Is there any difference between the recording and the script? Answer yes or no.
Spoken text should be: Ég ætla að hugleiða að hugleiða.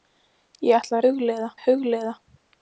no